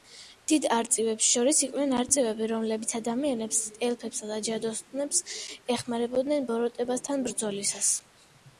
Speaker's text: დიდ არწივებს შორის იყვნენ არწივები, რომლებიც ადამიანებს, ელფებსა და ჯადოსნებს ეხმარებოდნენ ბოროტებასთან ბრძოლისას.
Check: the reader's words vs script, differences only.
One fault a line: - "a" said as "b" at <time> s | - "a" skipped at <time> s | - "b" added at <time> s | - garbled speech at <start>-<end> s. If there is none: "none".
none